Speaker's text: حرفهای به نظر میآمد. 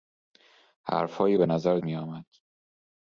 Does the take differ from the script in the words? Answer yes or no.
no